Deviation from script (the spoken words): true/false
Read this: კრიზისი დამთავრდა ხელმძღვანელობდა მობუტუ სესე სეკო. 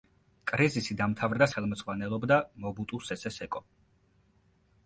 false